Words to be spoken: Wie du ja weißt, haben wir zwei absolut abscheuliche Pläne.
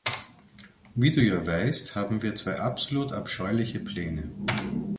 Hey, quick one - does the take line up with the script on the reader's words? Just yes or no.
yes